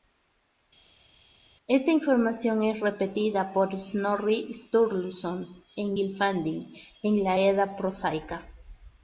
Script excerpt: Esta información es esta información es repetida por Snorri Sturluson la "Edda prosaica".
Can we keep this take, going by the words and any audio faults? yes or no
no